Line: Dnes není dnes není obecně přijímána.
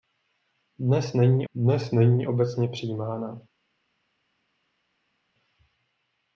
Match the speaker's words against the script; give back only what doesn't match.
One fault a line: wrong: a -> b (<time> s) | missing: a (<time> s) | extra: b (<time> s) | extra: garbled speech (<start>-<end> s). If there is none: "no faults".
no faults